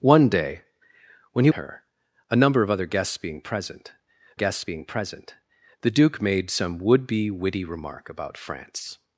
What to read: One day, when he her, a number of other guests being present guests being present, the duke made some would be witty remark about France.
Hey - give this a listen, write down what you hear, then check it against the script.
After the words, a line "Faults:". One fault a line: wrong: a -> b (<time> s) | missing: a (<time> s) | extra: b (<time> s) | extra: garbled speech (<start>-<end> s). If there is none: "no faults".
One day, when he her, a number of other guests being present guests being present, the duke made some would be witty remark about France.
Faults:
no faults